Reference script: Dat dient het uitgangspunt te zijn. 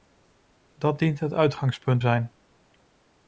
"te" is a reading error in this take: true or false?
true